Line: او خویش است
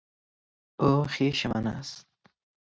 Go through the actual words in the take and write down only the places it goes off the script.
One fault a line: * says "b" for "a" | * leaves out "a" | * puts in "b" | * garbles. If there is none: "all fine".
* puts in "من"